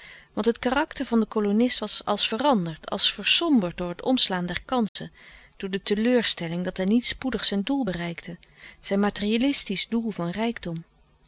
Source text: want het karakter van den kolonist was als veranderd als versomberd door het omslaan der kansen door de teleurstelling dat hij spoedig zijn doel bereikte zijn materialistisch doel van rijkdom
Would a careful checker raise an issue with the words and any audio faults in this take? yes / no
yes